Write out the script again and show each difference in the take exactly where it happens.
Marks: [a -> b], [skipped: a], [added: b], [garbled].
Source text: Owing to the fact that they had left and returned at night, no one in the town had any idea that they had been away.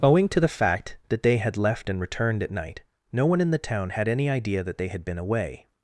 Owing to the fact that they had left and returned at night, no one in the town had any idea that they had been away.